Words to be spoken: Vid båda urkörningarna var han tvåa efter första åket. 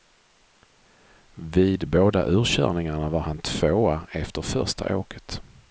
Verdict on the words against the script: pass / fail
pass